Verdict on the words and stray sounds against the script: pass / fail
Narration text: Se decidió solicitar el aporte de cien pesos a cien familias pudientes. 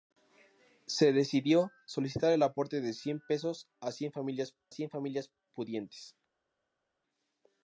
fail